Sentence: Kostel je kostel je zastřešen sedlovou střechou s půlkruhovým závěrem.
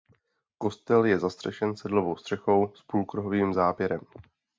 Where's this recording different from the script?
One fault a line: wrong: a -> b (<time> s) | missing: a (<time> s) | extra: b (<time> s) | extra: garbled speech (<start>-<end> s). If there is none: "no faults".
missing: kostel je (1.2 s)